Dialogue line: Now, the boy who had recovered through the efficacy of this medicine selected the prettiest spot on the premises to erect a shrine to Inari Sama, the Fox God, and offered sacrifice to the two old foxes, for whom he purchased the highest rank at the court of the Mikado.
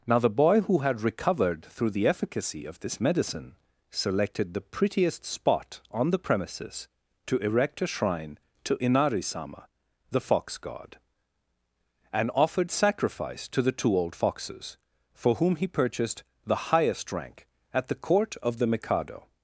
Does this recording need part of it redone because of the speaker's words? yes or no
no